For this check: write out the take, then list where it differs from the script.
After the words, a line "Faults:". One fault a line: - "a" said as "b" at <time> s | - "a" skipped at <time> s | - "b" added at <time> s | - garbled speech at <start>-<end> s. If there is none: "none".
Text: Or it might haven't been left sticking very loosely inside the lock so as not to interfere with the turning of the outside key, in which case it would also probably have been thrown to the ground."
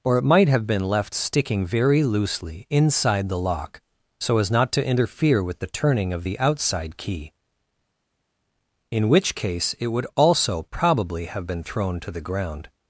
Or it might have been left sticking very loosely inside the lock so as not to interfere with the turning of the outside key, in which case it would also probably have been thrown to the ground."
Faults:
- "haven't" said as "have" at 0.5 s